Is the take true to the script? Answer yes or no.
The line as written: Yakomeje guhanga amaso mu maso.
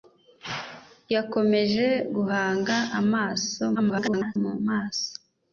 no